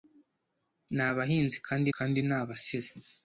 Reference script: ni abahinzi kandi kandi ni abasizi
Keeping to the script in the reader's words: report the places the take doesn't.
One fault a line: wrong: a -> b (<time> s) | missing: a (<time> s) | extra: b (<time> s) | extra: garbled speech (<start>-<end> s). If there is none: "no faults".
no faults